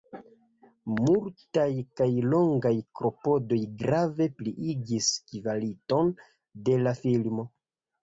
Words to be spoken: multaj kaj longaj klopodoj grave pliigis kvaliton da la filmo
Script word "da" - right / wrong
wrong